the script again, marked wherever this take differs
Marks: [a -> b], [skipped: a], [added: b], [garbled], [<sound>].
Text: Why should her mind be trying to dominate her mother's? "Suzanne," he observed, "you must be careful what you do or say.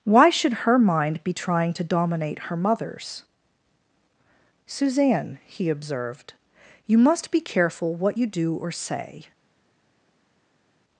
Why should her mind be trying to dominate her mother's? "Suzanne," he observed, "you must be careful what you do or say.